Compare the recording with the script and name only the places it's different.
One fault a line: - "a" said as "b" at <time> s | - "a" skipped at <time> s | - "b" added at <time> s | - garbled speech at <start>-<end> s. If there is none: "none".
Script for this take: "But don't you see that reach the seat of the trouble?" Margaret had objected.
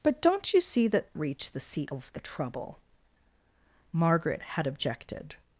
none